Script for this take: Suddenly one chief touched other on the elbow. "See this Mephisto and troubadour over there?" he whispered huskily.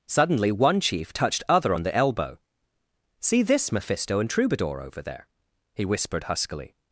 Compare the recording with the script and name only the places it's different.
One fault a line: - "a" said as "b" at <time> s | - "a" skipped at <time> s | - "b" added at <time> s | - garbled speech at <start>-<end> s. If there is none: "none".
none